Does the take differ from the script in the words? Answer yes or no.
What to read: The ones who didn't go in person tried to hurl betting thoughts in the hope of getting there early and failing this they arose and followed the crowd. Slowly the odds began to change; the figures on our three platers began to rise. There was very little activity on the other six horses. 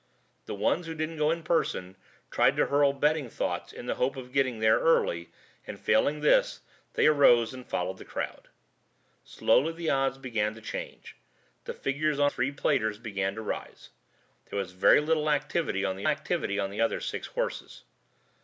yes